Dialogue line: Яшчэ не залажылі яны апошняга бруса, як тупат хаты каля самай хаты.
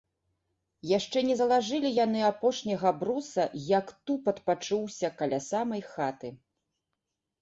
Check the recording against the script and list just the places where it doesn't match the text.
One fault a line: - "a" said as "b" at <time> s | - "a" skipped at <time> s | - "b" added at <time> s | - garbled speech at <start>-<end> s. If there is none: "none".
- "хаты" said as "пачуўся" at 4.5 s